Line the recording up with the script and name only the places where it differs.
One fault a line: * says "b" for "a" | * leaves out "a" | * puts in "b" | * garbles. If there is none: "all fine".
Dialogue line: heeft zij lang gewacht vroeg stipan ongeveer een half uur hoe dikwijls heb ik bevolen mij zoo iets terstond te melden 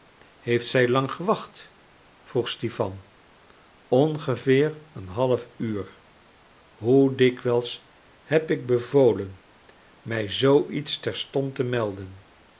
all fine